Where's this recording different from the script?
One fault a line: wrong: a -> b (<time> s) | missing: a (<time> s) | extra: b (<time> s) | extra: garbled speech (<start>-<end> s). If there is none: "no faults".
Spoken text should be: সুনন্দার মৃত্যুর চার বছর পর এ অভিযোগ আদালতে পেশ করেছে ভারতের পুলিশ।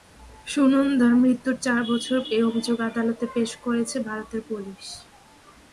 missing: পর (2.2 s)